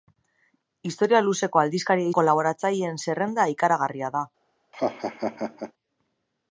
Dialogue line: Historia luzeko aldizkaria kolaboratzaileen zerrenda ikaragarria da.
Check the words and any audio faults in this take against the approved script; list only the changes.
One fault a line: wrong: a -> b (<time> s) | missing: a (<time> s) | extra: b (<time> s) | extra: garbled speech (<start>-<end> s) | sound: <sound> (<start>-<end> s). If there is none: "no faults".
sound: laugh (4.7-5.7 s)